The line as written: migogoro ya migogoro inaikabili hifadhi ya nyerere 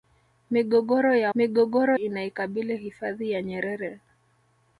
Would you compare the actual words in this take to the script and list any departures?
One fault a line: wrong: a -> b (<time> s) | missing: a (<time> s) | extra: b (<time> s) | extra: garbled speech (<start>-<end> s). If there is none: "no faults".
no faults